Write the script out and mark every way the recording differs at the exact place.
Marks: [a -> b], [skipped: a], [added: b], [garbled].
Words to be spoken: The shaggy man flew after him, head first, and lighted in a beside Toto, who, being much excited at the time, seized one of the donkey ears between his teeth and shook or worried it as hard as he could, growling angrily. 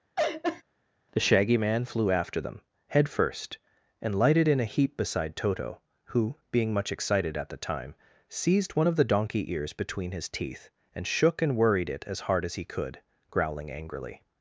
The shaggy man flew after [him, -> them] head first, and lighted in a [added: heap] beside Toto, who, being much excited at the time, seized one of the donkey ears between his teeth and shook [or -> and] worried it as hard as he could, growling angrily.